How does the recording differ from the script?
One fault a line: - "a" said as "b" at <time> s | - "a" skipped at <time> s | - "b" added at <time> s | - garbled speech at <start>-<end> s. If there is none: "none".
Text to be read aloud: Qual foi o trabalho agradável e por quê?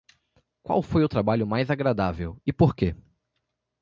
- "mais" added at 1.4 s